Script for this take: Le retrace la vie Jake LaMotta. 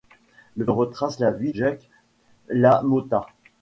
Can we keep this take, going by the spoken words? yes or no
yes